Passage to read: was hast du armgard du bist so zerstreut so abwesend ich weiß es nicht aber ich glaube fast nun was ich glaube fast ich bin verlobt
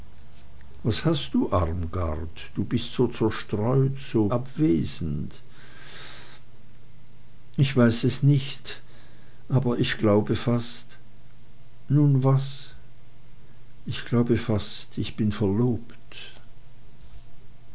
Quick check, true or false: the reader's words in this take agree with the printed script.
true